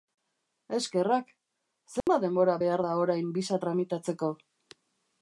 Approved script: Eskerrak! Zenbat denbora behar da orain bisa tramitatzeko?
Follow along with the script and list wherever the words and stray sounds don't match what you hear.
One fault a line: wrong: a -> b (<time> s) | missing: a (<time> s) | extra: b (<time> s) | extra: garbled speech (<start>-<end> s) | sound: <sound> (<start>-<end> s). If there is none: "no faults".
sound: dropout (2.0-2.1 s)